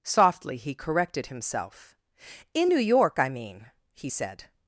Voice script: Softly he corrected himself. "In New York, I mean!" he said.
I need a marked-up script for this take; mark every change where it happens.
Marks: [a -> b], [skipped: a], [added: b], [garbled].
Softly he corrected himself. "In New York, I mean!" he said.